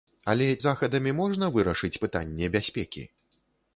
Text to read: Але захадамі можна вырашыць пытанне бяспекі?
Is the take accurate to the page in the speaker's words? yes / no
yes